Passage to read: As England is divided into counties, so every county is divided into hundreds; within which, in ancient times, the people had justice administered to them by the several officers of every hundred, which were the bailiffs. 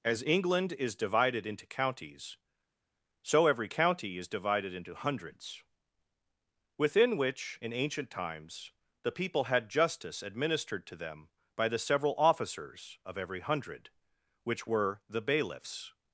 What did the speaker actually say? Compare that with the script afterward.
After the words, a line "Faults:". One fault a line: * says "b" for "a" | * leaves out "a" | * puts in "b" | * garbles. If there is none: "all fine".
As England is divided into counties, so every county is divided into hundreds; within which, in ancient times, the people had justice administered to them by the several officers of every hundred, which were the bailiffs.
Faults:
all fine